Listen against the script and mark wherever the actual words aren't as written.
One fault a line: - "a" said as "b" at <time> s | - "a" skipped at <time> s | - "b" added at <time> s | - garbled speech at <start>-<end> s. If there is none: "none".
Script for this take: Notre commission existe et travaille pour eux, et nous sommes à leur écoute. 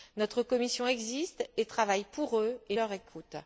- "nous sommes à" skipped at 2.8 s